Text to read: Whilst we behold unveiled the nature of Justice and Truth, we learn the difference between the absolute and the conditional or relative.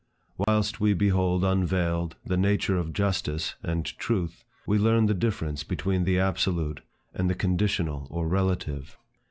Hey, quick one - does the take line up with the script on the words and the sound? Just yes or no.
no